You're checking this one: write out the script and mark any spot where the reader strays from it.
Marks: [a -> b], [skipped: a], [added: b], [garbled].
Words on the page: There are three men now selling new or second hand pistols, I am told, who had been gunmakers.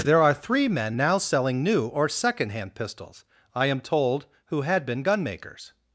There are three men now selling new or second hand pistols, I am told, who had been gunmakers.